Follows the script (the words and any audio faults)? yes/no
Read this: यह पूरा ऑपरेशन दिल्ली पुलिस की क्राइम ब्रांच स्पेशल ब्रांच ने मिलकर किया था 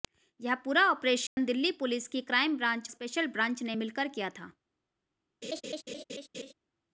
no